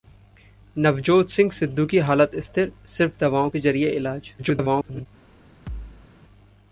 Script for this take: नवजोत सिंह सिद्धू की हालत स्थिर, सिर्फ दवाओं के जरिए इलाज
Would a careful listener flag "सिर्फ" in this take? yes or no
no